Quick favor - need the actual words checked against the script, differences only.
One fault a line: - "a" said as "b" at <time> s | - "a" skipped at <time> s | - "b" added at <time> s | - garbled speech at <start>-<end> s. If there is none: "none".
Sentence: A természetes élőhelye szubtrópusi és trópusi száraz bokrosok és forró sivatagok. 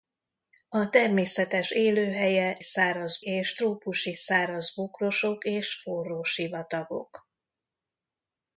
- "szubtrópusi" said as "száraz" at 2.6 s